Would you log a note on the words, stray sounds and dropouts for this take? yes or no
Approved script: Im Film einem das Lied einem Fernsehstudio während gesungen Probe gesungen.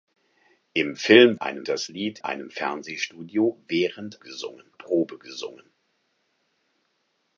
no